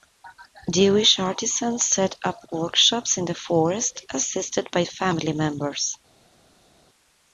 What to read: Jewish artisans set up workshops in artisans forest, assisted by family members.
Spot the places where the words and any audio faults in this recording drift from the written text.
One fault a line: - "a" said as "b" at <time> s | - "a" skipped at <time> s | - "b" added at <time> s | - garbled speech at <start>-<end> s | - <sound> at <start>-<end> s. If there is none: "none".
- "artisans" said as "the" at 3.2 s